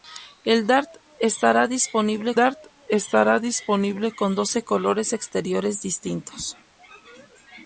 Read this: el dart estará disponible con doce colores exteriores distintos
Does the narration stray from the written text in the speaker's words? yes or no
yes